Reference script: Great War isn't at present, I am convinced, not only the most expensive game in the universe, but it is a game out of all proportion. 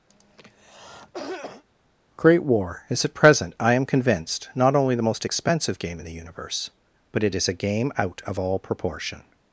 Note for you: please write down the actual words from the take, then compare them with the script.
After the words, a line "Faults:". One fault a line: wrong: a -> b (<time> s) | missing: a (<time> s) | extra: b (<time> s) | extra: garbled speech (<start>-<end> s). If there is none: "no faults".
Great War is at present, I am convinced, not only the most expensive game in the universe, but it is a game out of all proportion.
Faults:
wrong: isn't -> is (2.9 s)